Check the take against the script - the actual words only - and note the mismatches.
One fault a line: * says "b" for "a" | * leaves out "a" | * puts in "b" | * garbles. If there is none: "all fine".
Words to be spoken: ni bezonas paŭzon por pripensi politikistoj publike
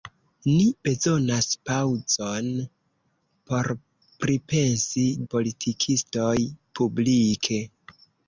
all fine